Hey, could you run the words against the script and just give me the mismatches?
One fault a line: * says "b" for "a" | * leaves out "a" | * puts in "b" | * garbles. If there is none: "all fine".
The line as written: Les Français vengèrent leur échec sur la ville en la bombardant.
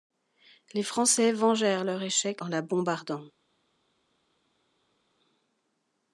* leaves out "sur la ville"